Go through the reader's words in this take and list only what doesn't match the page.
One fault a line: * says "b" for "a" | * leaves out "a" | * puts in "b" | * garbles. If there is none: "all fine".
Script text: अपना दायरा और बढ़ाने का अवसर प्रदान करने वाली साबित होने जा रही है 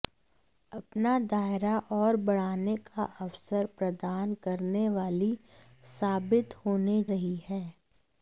* leaves out "जा"